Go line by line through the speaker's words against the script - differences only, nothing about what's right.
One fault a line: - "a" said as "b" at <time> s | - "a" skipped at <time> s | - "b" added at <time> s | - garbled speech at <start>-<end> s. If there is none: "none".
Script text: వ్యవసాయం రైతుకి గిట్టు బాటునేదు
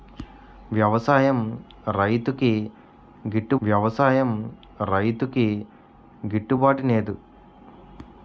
- "వ్యవసాయం రైతుకి గిట్టు" added at 3.6 s